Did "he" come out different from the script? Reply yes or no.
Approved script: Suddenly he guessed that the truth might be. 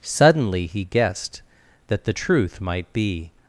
no